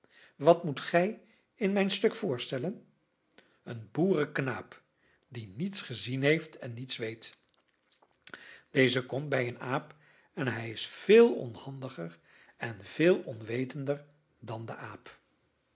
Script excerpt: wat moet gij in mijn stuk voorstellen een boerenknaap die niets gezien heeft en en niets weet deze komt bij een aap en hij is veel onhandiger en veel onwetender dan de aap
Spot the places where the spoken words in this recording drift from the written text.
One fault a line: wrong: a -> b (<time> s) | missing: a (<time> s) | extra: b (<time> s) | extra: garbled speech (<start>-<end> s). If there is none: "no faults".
missing: en (6.7 s)